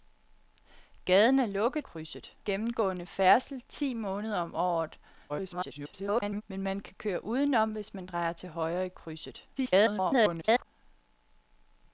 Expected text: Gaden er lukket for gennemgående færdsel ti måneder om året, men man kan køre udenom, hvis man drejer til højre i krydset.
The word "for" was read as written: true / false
false